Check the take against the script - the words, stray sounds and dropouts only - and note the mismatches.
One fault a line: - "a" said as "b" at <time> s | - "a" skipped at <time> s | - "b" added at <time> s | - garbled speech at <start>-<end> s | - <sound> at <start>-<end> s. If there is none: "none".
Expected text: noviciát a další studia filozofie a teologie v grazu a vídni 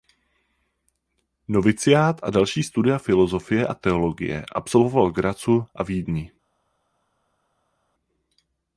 - "absolvoval" added at 4.5 s